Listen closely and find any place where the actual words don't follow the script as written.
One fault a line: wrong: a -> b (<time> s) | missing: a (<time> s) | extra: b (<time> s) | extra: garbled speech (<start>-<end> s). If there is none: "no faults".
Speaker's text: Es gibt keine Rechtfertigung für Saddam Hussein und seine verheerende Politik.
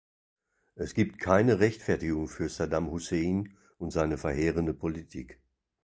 no faults